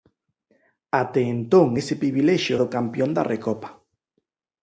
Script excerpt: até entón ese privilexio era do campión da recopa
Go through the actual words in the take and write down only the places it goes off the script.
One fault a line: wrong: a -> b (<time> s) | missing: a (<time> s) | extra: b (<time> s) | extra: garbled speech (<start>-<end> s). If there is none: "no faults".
missing: era (2.6 s)